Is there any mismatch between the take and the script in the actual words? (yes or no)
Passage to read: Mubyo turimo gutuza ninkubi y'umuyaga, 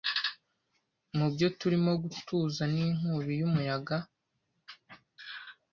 no